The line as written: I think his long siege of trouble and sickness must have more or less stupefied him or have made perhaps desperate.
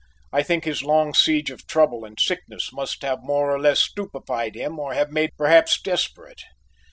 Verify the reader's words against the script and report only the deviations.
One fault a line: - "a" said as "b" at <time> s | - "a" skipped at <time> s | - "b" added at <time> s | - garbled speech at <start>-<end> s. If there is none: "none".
none